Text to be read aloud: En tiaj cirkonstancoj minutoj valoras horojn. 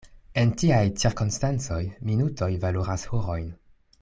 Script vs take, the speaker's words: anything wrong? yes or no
no